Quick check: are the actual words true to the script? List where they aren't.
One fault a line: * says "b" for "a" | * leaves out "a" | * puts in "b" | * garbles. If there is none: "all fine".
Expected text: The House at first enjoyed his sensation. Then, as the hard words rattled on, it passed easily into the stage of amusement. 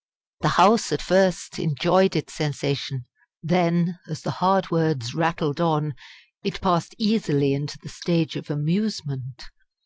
* says "its" for "his"